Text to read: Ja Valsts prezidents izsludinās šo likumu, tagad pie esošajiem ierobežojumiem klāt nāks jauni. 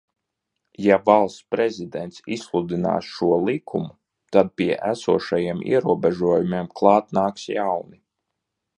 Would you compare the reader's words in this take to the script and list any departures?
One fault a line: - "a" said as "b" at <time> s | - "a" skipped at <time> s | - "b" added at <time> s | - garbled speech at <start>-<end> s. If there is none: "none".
- "tagad" said as "tad" at 4.4 s